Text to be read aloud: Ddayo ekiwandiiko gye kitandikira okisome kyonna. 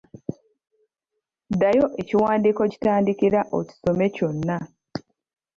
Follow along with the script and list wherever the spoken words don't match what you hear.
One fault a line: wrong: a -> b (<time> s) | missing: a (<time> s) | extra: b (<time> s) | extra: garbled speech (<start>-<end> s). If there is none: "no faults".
missing: gye (2.6 s)